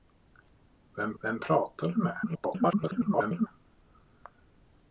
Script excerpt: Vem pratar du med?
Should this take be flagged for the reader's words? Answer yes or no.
yes